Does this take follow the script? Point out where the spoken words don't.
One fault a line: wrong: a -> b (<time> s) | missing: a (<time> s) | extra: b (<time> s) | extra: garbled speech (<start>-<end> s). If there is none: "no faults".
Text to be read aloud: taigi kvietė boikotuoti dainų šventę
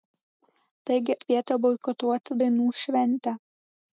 no faults